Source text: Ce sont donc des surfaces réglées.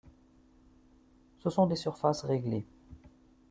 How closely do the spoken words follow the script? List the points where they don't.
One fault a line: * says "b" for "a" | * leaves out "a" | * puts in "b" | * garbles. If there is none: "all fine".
* leaves out "donc"